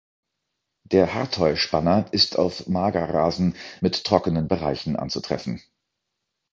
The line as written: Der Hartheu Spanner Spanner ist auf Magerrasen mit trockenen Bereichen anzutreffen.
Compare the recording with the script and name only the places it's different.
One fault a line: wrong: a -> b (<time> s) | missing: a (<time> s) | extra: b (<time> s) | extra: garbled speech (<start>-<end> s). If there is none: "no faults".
missing: Spanner (2.1 s)